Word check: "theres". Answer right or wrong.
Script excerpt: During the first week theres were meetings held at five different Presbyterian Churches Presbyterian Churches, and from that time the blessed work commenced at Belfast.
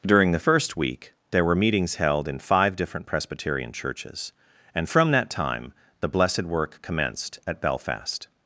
wrong